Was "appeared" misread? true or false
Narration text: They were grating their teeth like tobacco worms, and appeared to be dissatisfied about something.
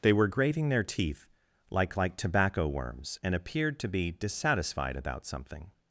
false